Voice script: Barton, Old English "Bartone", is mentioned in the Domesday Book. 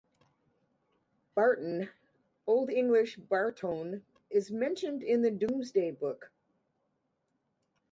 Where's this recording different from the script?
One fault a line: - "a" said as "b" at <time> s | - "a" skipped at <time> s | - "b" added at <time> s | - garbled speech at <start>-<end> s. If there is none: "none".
none